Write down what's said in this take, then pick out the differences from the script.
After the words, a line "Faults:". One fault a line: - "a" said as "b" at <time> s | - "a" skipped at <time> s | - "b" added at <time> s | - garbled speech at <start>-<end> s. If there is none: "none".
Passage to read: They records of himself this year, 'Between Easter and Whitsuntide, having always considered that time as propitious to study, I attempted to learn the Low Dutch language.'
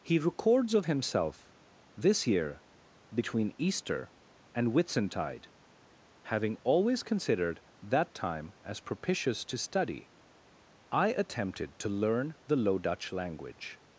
He records of himself this year, 'Between Easter and Whitsuntide, having always considered that time as propitious to study, I attempted to learn the Low Dutch language.'
Faults:
- "They" said as "He" at 0.0 s